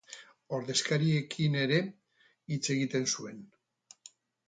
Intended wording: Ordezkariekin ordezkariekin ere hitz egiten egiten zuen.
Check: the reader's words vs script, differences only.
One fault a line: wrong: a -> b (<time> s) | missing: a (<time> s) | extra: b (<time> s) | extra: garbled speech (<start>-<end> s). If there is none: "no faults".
missing: ordezkariekin (1.6 s)
missing: egiten (3.1 s)